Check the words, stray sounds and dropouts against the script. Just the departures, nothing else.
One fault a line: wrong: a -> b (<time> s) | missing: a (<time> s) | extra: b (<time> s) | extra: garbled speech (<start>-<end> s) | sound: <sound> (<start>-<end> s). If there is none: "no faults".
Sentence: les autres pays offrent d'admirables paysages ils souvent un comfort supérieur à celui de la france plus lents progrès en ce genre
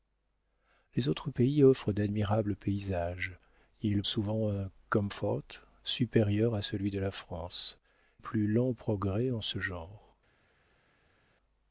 no faults